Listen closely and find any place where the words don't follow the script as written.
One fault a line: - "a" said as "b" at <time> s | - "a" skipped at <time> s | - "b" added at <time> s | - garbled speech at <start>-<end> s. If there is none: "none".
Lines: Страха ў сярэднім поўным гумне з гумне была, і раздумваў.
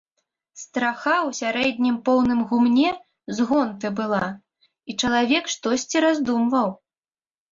- "гумне" said as "гонты" at 3.5 s
- "чалавек штосьці" added at 5.0 s